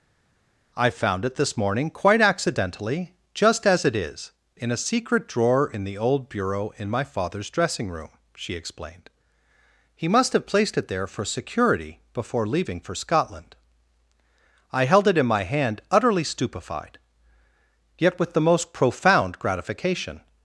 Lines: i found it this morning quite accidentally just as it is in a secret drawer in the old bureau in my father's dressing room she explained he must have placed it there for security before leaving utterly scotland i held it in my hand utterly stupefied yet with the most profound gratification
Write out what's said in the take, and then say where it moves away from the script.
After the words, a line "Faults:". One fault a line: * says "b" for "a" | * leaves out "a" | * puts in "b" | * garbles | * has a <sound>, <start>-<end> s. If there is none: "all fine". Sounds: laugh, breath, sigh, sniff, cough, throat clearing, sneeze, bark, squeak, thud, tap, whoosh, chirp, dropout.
i found it this morning quite accidentally just as it is in a secret drawer in the old bureau in my father's dressing room she explained he must have placed it there for security before leaving for scotland i held it in my hand utterly stupefied yet with the most profound gratification
Faults:
* says "for" for "utterly"